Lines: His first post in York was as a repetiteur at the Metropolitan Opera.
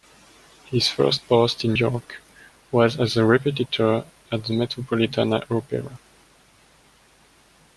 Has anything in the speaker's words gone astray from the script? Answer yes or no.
no